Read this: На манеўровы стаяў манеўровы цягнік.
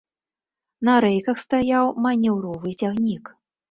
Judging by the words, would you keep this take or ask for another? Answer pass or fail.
fail